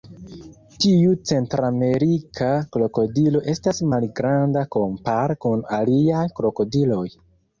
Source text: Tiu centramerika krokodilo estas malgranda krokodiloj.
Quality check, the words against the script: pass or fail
fail